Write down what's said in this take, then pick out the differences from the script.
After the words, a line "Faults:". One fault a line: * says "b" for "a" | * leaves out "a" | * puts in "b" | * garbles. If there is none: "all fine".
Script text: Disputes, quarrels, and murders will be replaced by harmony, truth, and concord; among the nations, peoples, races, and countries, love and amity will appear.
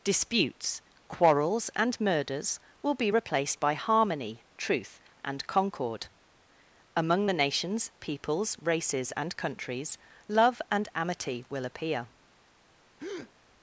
Disputes, quarrels, and murders will be replaced by harmony, truth, and concord; among the nations, peoples, races, and countries, love and amity will appear.
Faults:
all fine